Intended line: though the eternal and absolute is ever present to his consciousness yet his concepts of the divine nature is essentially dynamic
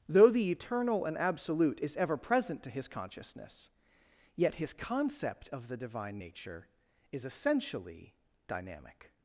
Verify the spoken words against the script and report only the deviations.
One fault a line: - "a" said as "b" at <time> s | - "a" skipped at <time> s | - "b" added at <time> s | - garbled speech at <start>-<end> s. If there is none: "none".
- "concepts" said as "concept" at 4.7 s